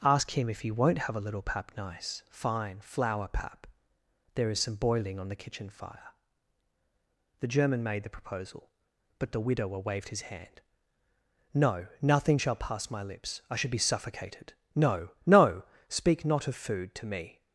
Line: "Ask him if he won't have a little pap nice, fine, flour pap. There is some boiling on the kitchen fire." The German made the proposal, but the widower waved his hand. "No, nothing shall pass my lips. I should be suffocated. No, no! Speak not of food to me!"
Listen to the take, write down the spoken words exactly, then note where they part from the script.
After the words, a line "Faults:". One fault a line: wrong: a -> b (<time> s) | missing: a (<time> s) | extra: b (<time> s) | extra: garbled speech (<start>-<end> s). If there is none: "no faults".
"Ask him if he won't have a little pap nice, fine, flour pap. There is some boiling on the kitchen fire." The German made the proposal, but the widower waved his hand. "No, nothing shall pass my lips. I should be suffocated. No, no! Speak not of food to me!"
Faults:
no faults